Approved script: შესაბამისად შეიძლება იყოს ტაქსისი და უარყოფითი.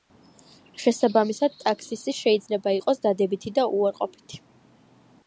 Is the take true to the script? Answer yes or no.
no